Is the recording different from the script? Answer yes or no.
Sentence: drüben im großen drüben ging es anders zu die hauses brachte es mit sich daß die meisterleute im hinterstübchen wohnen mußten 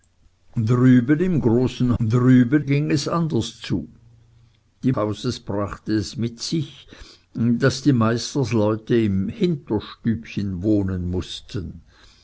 no